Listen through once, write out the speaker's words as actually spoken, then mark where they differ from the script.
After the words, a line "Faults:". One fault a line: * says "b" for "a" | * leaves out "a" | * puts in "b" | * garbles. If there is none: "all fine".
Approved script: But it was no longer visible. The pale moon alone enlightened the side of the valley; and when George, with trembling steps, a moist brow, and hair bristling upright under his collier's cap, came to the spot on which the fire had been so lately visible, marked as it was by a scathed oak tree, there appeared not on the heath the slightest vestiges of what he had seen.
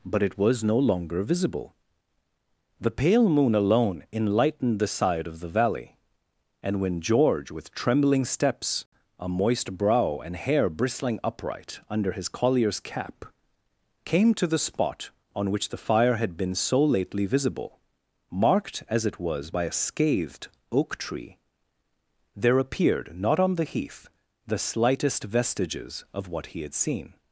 But it was no longer visible. The pale moon alone enlightened the side of the valley; and when George, with trembling steps, a moist brow, and hair bristling upright under his collier's cap, came to the spot on which the fire had been so lately visible, marked as it was by a scathed oak tree, there appeared not on the heath the slightest vestiges of what he had seen.
Faults:
all fine